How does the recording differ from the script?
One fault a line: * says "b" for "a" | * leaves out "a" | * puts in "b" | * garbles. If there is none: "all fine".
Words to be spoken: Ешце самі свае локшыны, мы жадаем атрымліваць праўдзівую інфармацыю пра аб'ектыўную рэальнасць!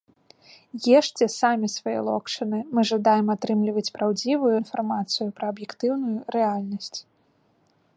all fine